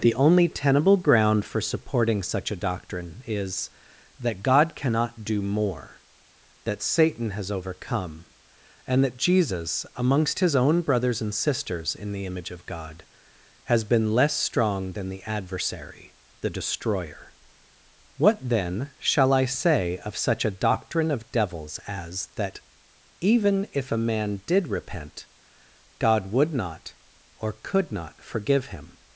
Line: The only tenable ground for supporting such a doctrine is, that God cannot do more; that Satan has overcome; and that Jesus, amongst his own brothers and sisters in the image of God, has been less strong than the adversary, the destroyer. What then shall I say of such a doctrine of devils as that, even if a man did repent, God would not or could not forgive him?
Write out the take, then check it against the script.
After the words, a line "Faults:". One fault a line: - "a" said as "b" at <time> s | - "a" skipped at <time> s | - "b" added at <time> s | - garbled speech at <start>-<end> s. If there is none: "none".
The only tenable ground for supporting such a doctrine is, that God cannot do more; that Satan has overcome; and that Jesus, amongst his own brothers and sisters in the image of God, has been less strong than the adversary, the destroyer. What then shall I say of such a doctrine of devils as that, even if a man did repent, God would not or could not forgive him?
Faults:
none